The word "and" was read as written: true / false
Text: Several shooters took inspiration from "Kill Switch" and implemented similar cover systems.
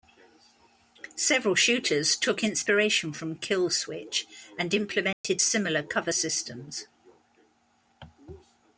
true